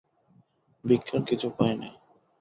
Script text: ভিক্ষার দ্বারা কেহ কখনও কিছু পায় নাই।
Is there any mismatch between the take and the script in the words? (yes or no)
yes